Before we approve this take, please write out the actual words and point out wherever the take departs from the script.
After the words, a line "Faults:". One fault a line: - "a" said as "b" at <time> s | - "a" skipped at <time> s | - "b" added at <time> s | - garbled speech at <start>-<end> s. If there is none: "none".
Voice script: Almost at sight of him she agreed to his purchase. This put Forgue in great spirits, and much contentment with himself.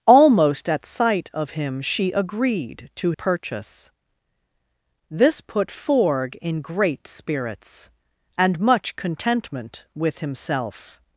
Almost at sight of him she agreed to purchase. This put Forgue in great spirits, and much contentment with himself.
Faults:
- "his" skipped at 3.1 s